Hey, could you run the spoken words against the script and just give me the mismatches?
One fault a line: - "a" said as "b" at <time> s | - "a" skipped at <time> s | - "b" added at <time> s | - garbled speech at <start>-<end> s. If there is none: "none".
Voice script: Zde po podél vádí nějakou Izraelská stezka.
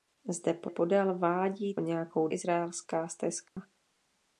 none